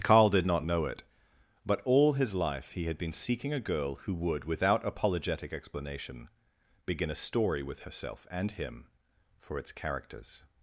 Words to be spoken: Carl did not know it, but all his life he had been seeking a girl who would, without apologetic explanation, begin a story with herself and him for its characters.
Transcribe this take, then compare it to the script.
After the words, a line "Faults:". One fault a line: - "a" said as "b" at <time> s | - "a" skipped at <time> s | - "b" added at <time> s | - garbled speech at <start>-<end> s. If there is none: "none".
Carl did not know it, but all his life he had been seeking a girl who would, without apologetic explanation, begin a story with herself and him for its characters.
Faults:
none